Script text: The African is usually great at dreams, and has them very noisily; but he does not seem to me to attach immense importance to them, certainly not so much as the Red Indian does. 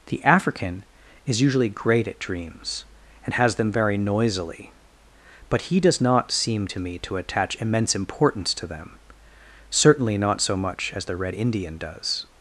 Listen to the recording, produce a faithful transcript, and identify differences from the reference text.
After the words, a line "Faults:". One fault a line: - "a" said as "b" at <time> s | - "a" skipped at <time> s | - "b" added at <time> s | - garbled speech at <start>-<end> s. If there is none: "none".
The African is usually great at dreams, and has them very noisily; but he does not seem to me to attach immense importance to them, certainly not so much as the Red Indian does.
Faults:
none